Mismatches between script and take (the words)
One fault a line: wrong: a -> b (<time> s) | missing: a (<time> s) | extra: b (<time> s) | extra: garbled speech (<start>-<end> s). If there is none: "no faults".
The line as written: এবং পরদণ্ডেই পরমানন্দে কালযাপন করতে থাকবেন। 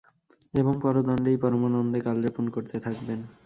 no faults